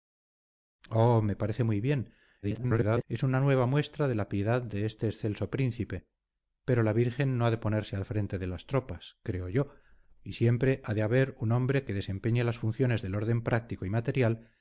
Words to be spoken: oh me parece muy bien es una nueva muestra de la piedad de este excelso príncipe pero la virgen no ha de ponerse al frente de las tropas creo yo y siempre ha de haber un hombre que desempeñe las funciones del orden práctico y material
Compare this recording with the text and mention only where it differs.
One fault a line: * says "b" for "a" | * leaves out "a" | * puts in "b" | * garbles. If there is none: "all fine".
* garbles